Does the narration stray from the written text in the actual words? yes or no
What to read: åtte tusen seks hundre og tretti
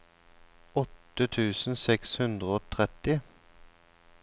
no